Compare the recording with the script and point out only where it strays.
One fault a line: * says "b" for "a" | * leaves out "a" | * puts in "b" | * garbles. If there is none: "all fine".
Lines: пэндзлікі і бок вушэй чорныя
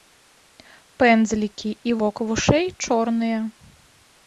all fine